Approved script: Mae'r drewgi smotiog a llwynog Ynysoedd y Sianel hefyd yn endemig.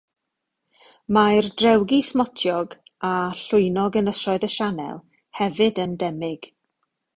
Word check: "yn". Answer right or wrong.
wrong